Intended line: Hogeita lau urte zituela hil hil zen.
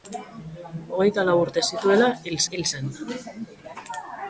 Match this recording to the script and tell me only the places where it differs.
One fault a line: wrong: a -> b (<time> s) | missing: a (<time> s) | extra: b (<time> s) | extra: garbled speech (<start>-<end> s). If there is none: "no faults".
no faults